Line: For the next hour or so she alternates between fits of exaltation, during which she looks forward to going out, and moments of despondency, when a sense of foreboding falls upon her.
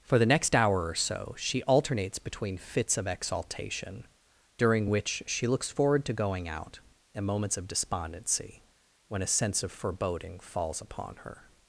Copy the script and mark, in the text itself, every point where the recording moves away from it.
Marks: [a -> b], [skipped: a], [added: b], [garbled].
For the next hour or so she alternates between fits of exaltation, during which she looks forward to going out, and moments of despondency, when a sense of foreboding falls upon her.